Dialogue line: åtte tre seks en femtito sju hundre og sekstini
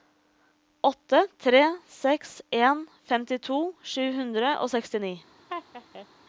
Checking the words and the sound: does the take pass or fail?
fail